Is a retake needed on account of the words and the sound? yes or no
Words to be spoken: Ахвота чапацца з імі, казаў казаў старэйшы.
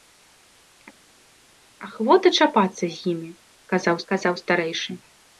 no